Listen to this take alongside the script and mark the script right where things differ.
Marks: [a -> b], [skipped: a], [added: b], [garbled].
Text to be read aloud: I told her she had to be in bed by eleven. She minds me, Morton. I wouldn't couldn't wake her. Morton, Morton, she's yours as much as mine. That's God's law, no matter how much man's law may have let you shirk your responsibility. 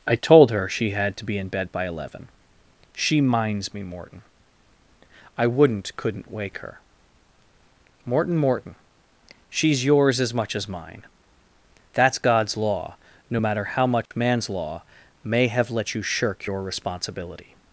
I told her she had to be in bed by eleven. She minds me, Morton. I wouldn't couldn't wake her. Morton, Morton, she's yours as much as mine. That's God's law, no matter how much man's law may have let you shirk your responsibility.